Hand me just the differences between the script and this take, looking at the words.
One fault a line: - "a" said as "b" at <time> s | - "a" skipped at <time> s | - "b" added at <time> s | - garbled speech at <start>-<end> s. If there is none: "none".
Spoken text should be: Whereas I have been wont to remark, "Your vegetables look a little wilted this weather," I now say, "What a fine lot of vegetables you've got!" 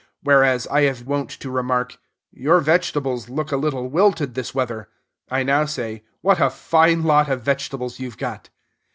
- "been" skipped at 1.1 s